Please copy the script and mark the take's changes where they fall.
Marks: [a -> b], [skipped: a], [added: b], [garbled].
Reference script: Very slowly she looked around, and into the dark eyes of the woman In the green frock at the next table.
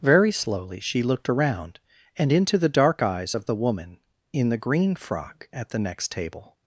Very slowly she looked around, and into the dark eyes of the woman In the green frock at the next table.